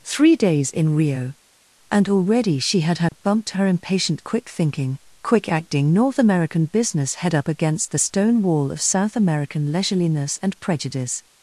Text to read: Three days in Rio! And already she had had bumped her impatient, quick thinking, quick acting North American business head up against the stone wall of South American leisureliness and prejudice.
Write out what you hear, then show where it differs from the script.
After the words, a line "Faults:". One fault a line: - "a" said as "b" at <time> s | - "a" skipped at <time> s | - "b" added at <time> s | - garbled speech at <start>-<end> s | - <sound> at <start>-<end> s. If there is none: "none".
Three days in Rio! And already she had had bumped her impatient, quick thinking, quick acting North American business head up against the stone wall of South American leisureliness and prejudice.
Faults:
- dropout at 3.1-3.1 s